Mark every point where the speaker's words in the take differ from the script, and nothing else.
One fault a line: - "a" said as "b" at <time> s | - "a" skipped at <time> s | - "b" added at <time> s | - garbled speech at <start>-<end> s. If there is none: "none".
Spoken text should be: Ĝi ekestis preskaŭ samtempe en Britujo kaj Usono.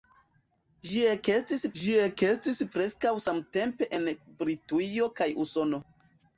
- "ĝi ekestis" added at 1.8 s